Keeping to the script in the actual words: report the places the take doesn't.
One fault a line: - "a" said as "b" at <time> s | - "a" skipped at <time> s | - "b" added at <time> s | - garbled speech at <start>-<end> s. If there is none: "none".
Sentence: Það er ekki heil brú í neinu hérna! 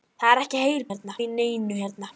- "brú" said as "hérna" at 0.9 s